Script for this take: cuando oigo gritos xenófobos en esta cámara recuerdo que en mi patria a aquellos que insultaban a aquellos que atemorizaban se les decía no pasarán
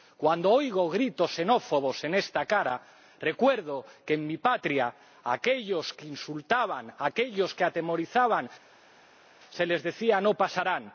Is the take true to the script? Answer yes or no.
yes